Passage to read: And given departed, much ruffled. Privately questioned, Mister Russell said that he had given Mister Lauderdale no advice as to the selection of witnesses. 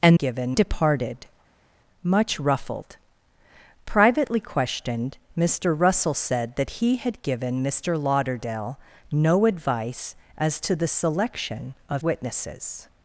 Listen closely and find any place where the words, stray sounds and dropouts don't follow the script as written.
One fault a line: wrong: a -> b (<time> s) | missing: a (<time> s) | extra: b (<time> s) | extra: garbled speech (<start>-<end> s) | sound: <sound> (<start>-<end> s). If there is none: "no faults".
no faults